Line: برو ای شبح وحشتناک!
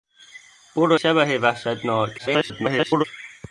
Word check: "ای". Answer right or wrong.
wrong